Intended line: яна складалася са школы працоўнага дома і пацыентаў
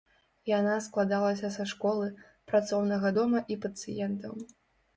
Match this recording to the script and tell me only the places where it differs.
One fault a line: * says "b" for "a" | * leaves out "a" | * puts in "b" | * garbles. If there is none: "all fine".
all fine